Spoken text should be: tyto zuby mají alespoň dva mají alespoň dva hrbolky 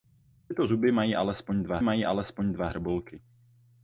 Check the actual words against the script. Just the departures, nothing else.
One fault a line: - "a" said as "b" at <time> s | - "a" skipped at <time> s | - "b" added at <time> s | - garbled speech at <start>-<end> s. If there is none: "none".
none